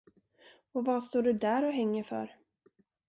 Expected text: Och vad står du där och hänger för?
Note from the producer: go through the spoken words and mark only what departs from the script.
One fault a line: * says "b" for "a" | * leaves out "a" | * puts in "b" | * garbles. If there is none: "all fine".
all fine